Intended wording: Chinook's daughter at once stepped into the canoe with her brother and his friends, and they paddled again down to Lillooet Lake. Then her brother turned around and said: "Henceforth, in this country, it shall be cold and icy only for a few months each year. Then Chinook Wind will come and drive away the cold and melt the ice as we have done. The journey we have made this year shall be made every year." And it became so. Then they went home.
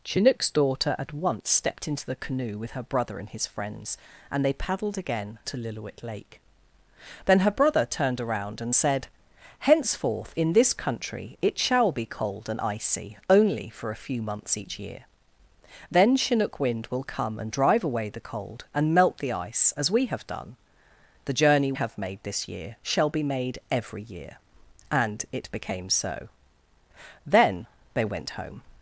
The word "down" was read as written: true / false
false